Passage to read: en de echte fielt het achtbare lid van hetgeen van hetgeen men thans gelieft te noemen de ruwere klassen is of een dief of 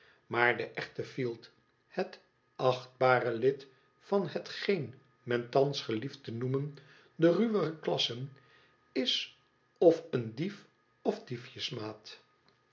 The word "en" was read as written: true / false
false